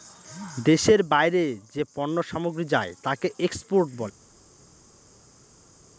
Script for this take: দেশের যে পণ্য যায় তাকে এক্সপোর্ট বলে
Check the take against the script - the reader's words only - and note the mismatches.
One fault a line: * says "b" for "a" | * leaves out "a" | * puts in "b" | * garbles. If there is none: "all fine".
* puts in "বাইরে"
* puts in "সামগ্রী"